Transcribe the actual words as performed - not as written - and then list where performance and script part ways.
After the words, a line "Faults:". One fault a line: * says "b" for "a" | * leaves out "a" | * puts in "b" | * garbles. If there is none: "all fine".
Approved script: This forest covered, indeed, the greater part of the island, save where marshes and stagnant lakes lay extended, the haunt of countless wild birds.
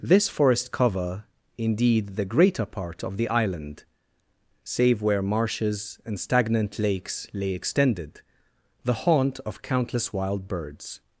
This forest cover, indeed, the greater part of the island, save where marshes and stagnant lakes lay extended, the haunt of countless wild birds.
Faults:
* says "cover" for "covered"